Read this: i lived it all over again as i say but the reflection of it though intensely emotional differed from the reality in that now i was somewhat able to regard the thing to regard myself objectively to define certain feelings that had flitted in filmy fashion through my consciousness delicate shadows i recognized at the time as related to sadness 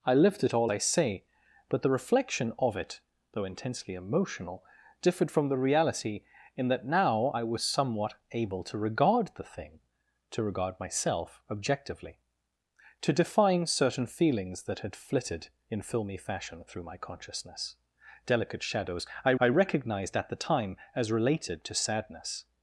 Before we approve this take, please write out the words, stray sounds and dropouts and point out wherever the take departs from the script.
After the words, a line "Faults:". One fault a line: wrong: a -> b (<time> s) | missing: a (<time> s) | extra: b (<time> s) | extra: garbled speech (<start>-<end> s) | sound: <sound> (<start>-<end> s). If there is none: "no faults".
i lived it all i say but the reflection of it though intensely emotional differed from the reality in that now i was somewhat able to regard the thing to regard myself objectively to define certain feelings that had flitted in filmy fashion through my consciousness delicate shadows i i recognized at the time as related to sadness
Faults:
missing: over again as (0.7 s)
extra: i (19.4 s)